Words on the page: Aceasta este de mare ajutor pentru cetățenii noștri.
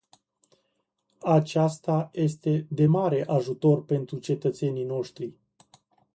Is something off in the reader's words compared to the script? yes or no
no